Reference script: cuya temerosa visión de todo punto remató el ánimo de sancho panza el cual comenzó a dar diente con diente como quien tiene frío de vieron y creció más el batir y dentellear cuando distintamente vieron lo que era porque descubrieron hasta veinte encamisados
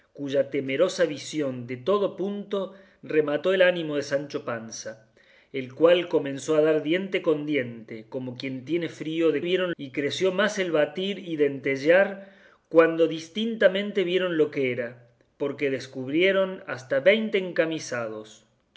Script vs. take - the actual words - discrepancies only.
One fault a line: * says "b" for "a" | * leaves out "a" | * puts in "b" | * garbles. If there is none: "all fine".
all fine